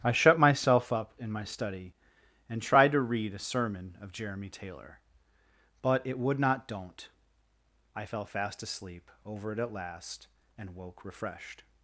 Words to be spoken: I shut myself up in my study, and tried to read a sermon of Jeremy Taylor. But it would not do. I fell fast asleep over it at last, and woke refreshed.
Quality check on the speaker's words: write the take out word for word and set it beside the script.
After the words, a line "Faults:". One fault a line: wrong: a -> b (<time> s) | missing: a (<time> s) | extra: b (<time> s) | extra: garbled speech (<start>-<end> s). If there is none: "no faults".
I shut myself up in my study, and tried to read a sermon of Jeremy Taylor. But it would not don't. I fell fast asleep over it at last, and woke refreshed.
Faults:
wrong: do -> don't (6.7 s)